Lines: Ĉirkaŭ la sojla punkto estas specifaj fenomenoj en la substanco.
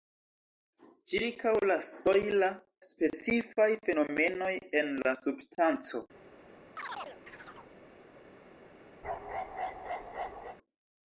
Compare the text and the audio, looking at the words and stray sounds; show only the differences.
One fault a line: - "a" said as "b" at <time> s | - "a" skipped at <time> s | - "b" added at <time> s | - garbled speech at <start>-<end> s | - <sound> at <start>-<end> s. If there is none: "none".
- "punkto estas" skipped at 2.5 s
- chirp at 6.8-7.8 s
- bark at 9.0-10.6 s